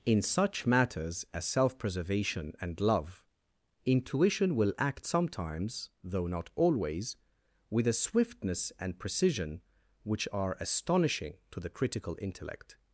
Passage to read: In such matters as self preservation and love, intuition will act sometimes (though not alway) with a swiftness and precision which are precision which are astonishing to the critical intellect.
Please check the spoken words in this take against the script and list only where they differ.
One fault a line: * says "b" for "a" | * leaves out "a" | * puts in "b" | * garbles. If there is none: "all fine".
* says "always" for "alway"
* leaves out "precision which are"